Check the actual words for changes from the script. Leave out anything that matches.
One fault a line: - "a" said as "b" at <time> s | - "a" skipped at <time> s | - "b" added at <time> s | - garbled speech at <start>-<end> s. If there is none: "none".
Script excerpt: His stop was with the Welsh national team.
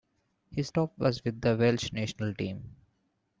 none